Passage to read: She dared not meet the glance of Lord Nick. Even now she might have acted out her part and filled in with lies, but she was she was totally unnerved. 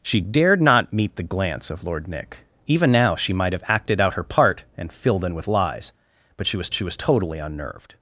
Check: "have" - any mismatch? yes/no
no